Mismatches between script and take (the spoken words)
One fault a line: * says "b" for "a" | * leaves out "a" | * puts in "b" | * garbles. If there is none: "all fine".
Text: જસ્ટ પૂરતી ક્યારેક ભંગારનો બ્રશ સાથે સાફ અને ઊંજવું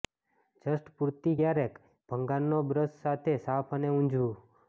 all fine